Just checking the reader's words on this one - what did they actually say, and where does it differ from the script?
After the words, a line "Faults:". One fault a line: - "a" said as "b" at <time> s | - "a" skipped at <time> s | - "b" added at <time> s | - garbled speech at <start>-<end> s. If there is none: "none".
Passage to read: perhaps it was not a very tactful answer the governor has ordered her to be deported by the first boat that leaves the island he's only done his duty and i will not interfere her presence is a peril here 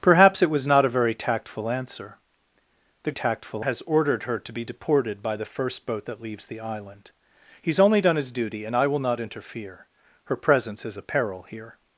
perhaps it was not a very tactful answer the tactful has ordered her to be deported by the first boat that leaves the island he's only done his duty and i will not interfere her presence is a peril here
Faults:
- "governor" said as "tactful" at 3.1 s